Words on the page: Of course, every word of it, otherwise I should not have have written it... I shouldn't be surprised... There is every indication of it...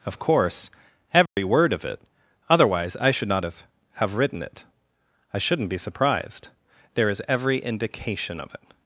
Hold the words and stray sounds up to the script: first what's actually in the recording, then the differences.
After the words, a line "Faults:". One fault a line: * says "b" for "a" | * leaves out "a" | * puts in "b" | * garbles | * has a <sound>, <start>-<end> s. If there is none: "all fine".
Of course, every word of it, otherwise I should not have have written it... I shouldn't be surprised... There is every indication of it...
Faults:
* has a dropout, 1.3-1.4 s